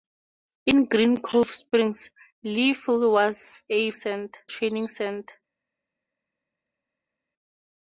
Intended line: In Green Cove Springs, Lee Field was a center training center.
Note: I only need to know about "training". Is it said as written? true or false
true